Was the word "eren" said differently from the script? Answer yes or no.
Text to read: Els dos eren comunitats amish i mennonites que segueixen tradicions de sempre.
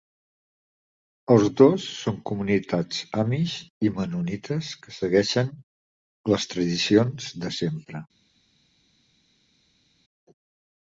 yes